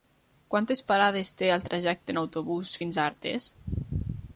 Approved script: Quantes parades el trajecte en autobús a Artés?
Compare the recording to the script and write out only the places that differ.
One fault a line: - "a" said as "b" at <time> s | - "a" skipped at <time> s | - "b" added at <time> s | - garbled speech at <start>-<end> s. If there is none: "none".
- "té" added at 1.4 s
- "fins" added at 2.8 s